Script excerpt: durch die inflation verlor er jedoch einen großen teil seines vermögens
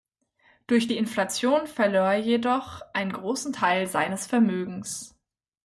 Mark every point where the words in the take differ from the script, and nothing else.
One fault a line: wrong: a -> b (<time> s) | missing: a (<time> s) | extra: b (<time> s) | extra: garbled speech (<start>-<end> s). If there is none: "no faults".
no faults